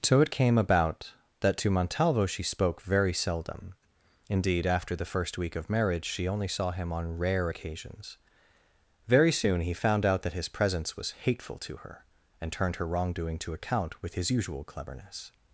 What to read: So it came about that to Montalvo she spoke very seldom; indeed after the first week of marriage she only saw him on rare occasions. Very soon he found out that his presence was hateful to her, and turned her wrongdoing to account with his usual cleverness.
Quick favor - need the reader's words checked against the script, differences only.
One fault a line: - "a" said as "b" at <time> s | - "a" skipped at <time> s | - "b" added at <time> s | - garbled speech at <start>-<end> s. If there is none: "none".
none